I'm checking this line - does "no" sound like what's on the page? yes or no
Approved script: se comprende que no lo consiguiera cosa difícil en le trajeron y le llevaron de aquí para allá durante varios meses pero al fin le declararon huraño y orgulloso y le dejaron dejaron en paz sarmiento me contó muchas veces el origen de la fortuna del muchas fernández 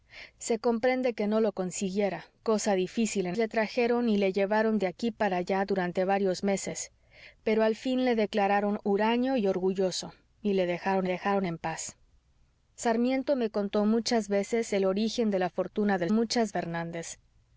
yes